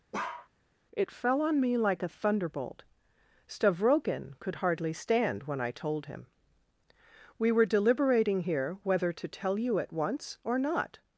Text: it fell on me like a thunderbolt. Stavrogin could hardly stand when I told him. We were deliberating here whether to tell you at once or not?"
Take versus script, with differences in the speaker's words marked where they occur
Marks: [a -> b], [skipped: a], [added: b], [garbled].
it fell on me like a thunderbolt. Stavrogin could hardly stand when I told him. We were deliberating here whether to tell you at once or not?"